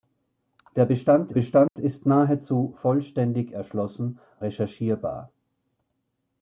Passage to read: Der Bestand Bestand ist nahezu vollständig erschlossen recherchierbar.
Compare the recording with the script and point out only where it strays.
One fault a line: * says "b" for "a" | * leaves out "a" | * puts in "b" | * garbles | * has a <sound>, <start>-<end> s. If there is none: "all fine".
* has a dropout, 1.7-1.8 s